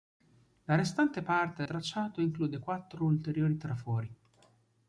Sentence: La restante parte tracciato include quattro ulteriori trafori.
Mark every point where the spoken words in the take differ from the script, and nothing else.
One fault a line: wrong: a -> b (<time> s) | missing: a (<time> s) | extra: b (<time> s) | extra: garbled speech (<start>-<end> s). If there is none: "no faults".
no faults